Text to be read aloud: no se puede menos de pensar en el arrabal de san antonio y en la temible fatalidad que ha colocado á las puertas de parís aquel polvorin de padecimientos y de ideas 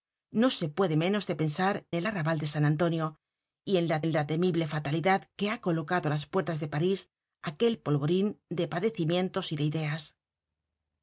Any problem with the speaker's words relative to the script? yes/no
yes